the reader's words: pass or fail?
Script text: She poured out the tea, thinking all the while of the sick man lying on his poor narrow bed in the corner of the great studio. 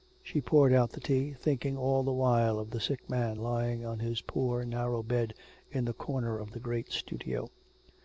pass